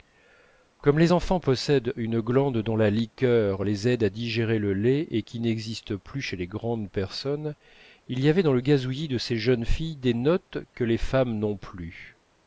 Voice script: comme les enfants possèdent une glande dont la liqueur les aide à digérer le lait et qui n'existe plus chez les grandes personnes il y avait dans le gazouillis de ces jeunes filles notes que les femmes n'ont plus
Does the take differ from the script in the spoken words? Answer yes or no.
yes